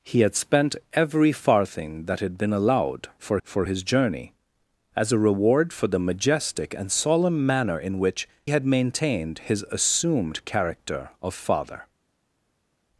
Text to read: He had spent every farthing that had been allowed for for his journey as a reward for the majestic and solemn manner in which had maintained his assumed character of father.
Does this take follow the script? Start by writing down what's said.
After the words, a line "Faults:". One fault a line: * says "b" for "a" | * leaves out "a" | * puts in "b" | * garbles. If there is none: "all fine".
He had spent every farthing that had been allowed for for his journey as a reward for the majestic and solemn manner in which had maintained his assumed character of father.
Faults:
all fine